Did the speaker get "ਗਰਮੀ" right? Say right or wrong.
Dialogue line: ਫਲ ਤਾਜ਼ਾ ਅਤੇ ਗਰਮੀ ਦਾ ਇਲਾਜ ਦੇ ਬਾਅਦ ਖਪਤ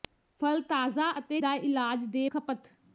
wrong